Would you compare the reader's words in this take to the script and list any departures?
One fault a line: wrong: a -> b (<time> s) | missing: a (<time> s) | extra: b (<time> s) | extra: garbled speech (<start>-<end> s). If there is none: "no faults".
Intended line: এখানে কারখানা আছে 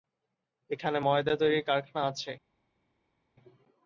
extra: ময়দা তৈরির (1.0 s)